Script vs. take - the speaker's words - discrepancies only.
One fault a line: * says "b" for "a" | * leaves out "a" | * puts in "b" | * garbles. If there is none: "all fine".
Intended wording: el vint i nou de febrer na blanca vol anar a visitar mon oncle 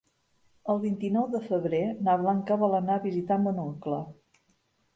all fine